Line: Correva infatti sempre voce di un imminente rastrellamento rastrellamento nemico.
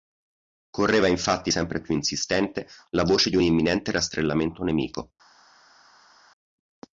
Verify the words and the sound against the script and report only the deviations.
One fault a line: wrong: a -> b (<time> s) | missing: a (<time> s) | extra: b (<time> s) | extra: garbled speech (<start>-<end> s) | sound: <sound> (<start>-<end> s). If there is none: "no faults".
extra: più insistente la (1.8 s)
missing: rastrellamento (4.6 s)